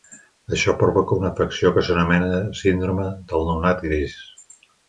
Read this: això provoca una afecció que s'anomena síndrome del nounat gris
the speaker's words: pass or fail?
pass